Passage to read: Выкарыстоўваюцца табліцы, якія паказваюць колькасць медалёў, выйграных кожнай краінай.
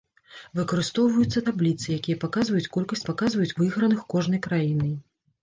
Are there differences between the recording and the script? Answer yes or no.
yes